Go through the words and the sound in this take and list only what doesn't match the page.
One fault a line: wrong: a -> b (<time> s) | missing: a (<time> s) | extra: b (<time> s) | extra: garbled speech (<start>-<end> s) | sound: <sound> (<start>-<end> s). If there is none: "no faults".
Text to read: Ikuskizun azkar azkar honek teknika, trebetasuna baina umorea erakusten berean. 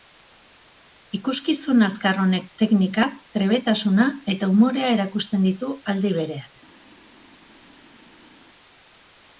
missing: azkar (2.2 s)
wrong: baina -> eta (4.3 s)
extra: ditu aldi (5.5 s)